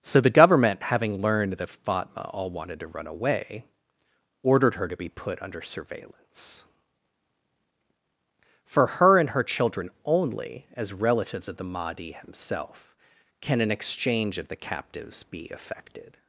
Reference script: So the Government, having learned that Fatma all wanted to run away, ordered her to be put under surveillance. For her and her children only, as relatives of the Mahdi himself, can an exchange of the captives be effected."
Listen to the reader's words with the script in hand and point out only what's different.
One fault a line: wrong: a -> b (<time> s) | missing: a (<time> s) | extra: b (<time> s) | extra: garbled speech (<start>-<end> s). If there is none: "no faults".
no faults